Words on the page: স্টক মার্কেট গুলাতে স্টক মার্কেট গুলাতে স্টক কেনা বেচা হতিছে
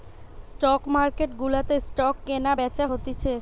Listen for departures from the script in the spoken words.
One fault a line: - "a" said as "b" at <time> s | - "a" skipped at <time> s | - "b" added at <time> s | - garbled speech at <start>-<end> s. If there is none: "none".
- "মার্কেট গুলাতে স্টক" skipped at 2.1 s